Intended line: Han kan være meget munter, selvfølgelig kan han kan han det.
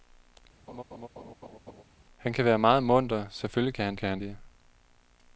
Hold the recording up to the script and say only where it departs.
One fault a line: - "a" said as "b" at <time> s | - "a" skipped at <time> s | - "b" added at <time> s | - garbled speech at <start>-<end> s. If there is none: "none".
none